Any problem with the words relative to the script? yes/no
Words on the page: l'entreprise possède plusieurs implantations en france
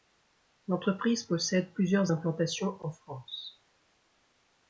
no